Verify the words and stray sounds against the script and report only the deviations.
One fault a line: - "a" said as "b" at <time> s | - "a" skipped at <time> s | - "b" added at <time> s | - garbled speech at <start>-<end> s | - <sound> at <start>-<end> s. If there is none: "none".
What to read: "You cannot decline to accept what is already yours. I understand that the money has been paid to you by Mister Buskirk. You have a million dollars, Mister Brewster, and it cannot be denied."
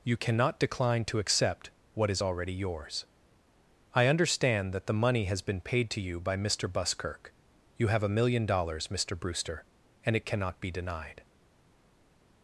none